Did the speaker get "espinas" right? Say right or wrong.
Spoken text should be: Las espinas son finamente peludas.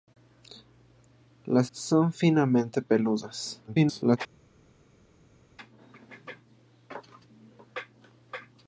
wrong